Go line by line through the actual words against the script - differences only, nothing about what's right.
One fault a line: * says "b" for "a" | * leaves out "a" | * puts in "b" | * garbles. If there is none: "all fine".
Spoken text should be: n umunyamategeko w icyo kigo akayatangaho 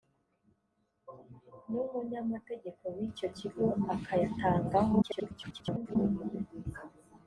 * garbles